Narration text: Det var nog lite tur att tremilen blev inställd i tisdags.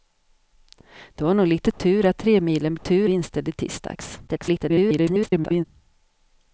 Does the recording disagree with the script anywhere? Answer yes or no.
yes